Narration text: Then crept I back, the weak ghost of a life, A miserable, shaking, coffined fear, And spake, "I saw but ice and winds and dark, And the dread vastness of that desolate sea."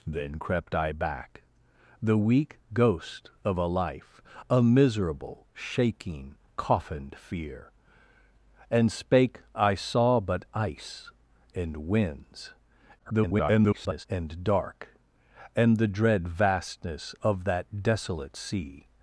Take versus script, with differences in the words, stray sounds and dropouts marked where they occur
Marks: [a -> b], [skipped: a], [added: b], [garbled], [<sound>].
Then crept I back, the weak ghost of a life, A miserable, shaking, coffined fear, And spake, "I saw but ice and winds [garbled] and dark, And the dread vastness of that desolate sea."